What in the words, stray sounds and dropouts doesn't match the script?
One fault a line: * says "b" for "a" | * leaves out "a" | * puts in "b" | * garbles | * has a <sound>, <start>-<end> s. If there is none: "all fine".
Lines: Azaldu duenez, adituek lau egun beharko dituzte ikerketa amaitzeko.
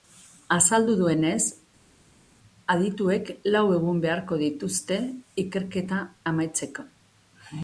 all fine